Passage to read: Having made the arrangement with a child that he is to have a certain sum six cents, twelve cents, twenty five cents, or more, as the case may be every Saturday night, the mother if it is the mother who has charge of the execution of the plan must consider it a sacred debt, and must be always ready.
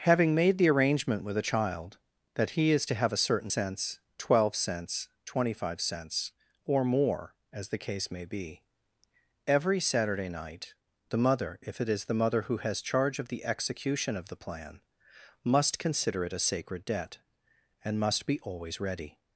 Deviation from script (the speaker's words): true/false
true